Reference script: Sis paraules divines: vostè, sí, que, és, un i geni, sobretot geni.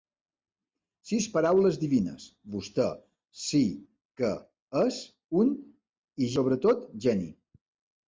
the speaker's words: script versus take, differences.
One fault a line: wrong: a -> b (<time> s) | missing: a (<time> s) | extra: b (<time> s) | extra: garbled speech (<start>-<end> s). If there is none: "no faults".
missing: geni (6.3 s)